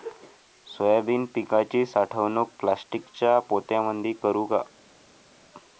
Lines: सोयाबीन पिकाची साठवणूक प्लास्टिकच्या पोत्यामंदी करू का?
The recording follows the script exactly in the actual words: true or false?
true